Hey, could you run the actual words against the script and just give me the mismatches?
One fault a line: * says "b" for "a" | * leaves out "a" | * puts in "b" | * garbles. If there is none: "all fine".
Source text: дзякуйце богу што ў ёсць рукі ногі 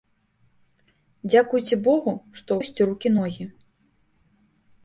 all fine